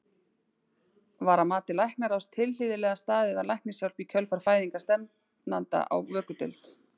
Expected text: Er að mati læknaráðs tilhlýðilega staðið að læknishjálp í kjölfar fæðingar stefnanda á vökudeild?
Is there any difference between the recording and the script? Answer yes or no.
yes